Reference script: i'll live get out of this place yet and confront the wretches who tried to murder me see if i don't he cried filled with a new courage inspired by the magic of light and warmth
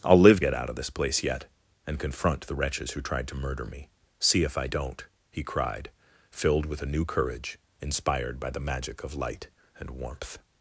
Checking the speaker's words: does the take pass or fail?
pass